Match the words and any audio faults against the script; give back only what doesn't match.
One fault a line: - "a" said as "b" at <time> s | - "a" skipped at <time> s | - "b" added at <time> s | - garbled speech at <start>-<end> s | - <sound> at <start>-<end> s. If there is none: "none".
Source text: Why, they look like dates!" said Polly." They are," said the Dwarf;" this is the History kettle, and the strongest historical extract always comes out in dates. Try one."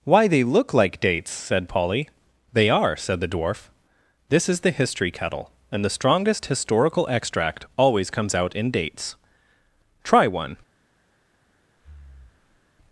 - breath at 11.8-12.7 s